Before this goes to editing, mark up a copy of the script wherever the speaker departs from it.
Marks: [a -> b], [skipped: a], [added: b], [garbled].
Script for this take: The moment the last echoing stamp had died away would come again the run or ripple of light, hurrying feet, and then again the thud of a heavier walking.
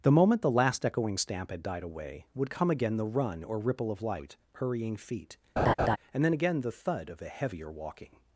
The moment the last echoing stamp had died away would come again the run or ripple of light, hurrying feet, and then again the thud of a heavier walking.